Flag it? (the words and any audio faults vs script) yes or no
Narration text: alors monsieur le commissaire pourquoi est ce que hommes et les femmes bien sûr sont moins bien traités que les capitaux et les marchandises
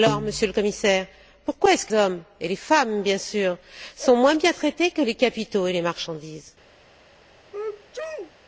yes